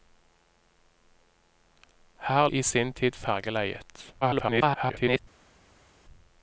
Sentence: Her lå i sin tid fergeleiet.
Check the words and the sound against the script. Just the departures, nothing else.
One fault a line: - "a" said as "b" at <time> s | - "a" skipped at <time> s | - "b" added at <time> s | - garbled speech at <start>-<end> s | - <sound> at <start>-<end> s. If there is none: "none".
- "lå" skipped at 2.5 s
- garbled speech at 4.2-5.2 s